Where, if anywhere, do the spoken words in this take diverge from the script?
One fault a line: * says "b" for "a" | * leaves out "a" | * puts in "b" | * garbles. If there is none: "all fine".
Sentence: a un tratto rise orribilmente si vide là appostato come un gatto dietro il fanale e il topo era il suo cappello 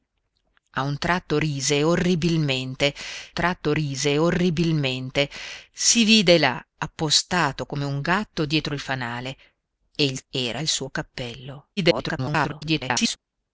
* puts in "tratto rise orribilmente"
* leaves out "topo"
* garbles